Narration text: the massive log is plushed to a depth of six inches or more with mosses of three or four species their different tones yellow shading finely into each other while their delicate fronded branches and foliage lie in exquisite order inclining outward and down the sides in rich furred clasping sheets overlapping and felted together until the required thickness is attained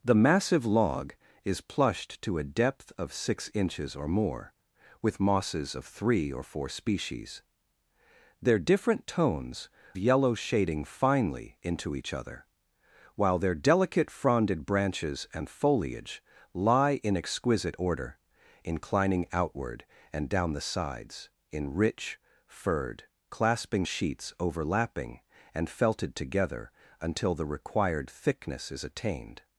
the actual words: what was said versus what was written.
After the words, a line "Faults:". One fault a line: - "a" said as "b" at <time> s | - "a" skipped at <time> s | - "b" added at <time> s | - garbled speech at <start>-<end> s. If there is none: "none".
the massive log is plushed to a depth of six inches or more with mosses of three or four species their different tones yellow shading finely into each other while their delicate fronded branches and foliage lie in exquisite order inclining outward and down the sides in rich furred clasping sheets overlapping and felted together until the required thickness is attained
Faults:
none